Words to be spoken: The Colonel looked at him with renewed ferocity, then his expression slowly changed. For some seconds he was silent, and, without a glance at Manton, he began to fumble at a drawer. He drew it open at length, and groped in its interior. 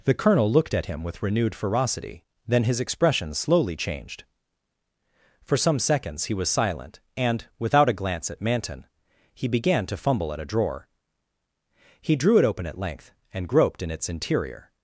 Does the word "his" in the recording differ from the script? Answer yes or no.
no